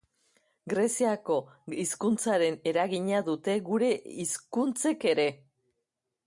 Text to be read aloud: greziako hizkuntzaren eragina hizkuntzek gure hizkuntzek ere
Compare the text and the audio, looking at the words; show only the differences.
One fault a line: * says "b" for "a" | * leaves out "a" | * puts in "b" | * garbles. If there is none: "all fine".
* says "dute" for "hizkuntzek"